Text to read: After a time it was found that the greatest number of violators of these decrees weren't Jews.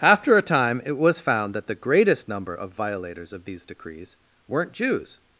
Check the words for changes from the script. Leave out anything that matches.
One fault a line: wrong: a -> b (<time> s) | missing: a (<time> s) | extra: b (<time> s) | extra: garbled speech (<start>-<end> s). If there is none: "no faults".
no faults